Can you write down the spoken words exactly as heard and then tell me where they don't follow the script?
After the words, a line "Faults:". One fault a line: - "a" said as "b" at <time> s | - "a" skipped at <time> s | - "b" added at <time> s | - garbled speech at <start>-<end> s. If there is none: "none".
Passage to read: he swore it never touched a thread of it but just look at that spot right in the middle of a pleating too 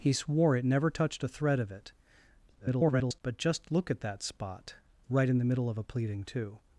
he swore it never touched a thread of it [garbled] but just look at that spot right in the middle of a pleating too
Faults:
- garbled speech at 2.5-3.2 s